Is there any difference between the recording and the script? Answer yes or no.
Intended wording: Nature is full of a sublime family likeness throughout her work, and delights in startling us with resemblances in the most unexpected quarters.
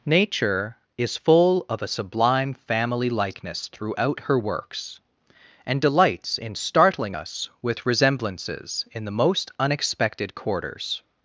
yes